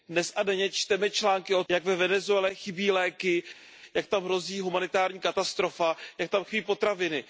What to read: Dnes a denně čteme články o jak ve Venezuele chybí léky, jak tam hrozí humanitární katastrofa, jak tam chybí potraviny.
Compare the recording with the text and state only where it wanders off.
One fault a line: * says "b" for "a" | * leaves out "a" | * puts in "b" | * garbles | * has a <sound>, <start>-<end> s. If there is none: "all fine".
all fine